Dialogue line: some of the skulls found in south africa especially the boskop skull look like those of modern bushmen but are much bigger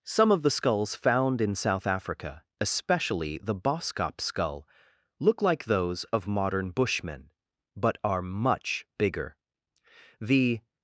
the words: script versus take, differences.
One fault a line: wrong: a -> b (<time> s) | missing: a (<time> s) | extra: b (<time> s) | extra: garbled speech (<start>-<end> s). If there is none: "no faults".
extra: the (10.2 s)